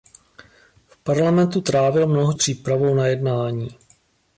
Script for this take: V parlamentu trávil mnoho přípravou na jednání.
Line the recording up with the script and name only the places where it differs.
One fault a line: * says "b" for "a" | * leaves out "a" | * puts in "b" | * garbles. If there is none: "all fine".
all fine